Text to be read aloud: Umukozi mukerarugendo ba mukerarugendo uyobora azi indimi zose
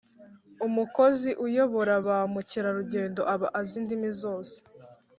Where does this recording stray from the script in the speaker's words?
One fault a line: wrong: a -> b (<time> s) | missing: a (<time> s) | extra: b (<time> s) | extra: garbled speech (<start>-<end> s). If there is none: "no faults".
wrong: mukerarugendo -> uyobora (1.4 s)
wrong: uyobora -> aba (3.3 s)